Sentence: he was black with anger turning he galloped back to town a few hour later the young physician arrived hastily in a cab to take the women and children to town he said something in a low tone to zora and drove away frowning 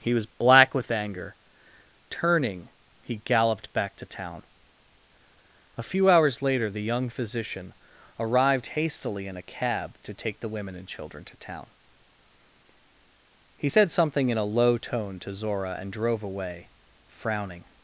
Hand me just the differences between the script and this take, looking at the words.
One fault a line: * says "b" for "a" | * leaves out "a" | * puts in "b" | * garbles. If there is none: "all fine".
* says "hours" for "hour"